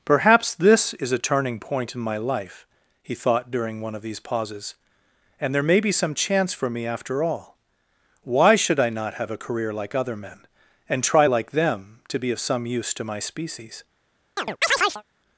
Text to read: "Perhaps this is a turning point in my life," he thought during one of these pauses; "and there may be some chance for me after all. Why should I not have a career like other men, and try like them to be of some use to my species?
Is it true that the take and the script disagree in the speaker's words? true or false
false